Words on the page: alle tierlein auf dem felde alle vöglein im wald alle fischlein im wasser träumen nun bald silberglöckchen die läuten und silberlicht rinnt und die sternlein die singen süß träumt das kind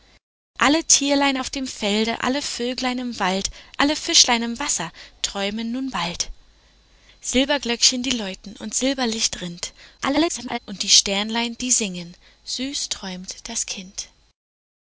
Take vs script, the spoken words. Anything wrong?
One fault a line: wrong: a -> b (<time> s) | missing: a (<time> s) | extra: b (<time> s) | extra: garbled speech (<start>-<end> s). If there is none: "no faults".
extra: garbled speech (10.0-10.6 s)